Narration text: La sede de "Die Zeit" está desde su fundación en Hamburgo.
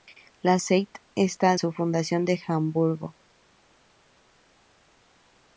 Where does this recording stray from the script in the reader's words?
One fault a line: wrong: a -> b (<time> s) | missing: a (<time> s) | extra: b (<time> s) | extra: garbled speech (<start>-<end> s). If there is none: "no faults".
missing: sede de Die (0.6 s)
missing: desde (1.6 s)